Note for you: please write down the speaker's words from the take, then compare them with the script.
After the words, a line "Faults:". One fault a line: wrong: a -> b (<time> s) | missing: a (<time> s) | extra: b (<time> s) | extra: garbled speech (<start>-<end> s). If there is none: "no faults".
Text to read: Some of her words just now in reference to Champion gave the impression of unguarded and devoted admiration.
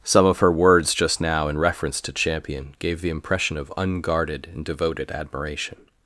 Some of her words just now in reference to Champion gave the impression of unguarded and devoted admiration.
Faults:
no faults